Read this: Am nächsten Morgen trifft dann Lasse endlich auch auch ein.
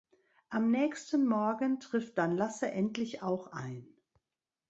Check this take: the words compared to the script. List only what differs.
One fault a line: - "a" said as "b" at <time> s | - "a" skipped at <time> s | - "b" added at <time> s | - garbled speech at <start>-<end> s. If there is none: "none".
- "auch" skipped at 3.5 s